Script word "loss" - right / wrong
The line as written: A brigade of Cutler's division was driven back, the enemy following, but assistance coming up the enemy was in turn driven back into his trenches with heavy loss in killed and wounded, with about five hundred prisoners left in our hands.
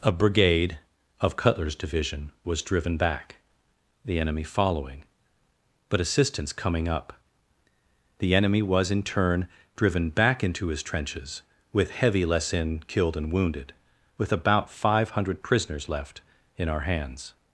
wrong